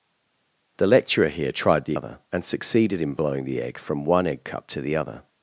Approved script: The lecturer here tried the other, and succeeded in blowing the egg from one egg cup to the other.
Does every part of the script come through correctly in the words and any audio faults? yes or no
yes